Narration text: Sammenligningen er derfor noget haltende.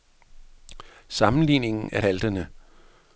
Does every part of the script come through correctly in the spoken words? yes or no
no